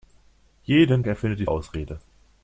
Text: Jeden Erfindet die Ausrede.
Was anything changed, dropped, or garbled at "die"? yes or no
no